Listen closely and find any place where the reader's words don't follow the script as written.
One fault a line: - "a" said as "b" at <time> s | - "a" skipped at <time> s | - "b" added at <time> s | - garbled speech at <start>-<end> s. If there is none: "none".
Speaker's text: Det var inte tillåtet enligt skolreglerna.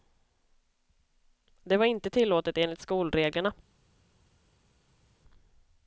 none